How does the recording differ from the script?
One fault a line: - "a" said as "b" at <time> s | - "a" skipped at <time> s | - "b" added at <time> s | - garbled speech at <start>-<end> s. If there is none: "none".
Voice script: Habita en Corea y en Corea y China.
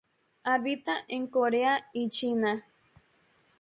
- "en Corea y" skipped at 2.1 s